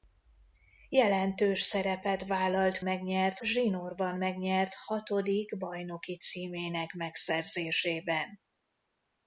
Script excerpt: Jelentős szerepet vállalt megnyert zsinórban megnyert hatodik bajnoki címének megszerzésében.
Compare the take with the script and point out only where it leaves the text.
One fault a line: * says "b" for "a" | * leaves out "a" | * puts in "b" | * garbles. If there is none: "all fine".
all fine